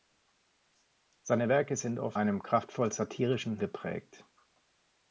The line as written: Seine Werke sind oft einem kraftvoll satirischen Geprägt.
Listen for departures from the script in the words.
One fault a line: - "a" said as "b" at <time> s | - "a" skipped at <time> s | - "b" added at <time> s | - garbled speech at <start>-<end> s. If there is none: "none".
none